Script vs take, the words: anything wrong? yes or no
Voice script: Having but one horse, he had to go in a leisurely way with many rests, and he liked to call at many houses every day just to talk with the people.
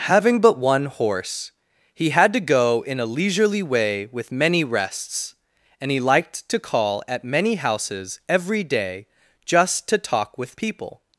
yes